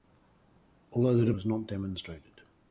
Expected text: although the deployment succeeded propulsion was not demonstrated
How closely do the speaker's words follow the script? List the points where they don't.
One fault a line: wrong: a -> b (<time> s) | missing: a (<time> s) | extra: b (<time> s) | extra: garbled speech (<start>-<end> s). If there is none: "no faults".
missing: deployment succeeded propulsion (1.3 s)